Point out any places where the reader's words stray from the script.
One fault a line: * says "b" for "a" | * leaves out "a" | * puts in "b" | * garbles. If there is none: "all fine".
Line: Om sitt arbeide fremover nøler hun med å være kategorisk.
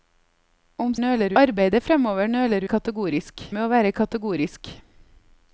* says "nøler" for "sitt"
* says "kategorisk" for "hun"